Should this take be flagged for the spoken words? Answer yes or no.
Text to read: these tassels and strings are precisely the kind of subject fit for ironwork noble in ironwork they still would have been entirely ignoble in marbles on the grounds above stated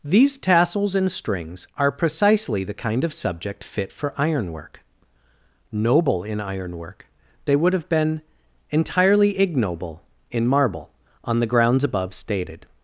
yes